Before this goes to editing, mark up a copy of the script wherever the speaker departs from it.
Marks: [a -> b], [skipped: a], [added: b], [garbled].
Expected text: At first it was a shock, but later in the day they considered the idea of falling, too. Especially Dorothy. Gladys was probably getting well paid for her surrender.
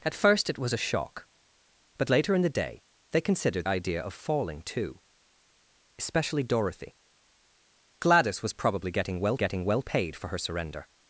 At first it was a shock, but later in the day they considered [skipped: the] idea of falling, too. Especially Dorothy. Gladys was probably getting well [added: getting well] paid for her surrender.